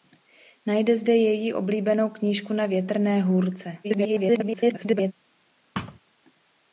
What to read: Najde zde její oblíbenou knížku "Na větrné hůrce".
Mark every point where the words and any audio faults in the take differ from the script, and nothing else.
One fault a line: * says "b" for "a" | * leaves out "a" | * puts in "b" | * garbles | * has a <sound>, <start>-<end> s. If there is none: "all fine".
* garbles
* has a thud, 5.7-6.0 s